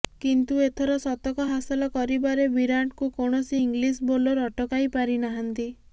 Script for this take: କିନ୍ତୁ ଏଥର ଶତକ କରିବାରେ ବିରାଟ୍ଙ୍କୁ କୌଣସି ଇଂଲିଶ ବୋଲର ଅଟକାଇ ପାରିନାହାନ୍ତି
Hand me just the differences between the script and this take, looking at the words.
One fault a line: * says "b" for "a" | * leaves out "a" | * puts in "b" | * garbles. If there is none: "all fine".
* puts in "ହାସଲ"